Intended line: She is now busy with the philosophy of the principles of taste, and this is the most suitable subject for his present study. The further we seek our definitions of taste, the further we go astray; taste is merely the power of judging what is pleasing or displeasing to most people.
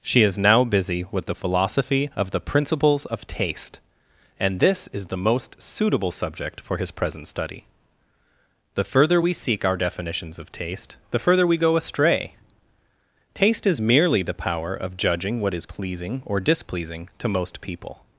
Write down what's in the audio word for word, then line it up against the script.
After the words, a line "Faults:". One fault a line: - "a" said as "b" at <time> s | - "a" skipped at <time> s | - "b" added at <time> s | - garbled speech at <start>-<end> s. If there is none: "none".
She is now busy with the philosophy of the principles of taste, and this is the most suitable subject for his present study. The further we seek our definitions of taste, the further we go astray; taste is merely the power of judging what is pleasing or displeasing to most people.
Faults:
none